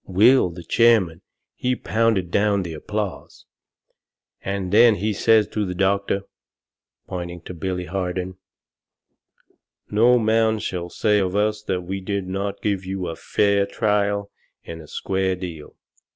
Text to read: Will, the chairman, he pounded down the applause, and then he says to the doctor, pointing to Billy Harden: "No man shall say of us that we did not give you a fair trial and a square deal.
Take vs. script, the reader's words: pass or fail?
pass